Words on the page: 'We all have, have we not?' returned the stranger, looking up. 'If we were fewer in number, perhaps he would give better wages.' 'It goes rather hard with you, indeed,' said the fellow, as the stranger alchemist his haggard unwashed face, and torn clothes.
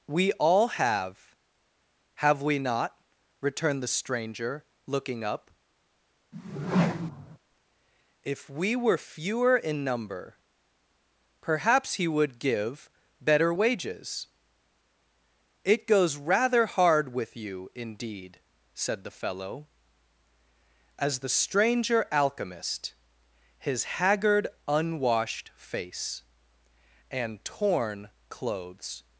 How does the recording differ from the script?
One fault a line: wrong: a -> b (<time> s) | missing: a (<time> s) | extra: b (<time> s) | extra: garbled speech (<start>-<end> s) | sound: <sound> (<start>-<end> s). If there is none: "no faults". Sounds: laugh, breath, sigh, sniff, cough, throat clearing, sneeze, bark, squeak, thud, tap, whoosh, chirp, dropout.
sound: whoosh (6.3-7.4 s)